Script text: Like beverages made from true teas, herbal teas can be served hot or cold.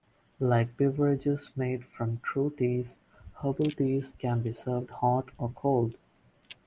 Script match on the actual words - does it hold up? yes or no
yes